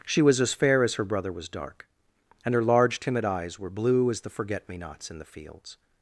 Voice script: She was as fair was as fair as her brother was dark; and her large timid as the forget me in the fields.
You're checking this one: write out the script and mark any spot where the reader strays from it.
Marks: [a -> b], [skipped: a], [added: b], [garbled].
She was as fair [skipped: was] as [skipped: fair as] her brother was dark; and her large timid [added: eyes were blue] as the forget me [added: nots] in the fields.